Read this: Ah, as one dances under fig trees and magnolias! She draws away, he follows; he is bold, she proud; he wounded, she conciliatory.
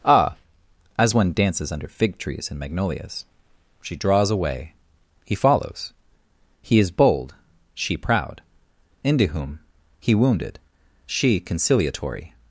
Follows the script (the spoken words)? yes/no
no